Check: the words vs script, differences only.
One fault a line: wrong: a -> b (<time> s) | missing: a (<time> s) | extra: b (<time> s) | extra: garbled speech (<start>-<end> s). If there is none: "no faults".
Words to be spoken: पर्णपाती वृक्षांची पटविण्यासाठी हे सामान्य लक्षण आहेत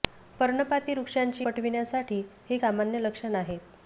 no faults